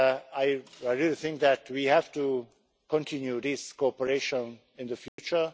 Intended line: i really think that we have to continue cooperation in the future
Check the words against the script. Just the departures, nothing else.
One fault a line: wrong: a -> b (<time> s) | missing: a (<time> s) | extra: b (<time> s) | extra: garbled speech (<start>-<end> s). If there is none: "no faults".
extra: this (3.4 s)